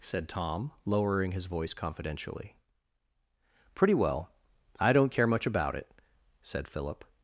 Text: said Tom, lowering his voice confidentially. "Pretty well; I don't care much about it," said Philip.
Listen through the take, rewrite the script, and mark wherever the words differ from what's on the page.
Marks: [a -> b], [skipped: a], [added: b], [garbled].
said Tom, lowering his voice confidentially. "Pretty well; I don't care much about it," said Philip.